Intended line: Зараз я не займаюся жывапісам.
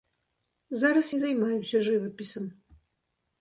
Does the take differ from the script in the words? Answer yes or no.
yes